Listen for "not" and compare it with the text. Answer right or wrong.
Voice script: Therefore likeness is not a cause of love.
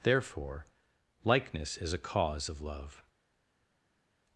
wrong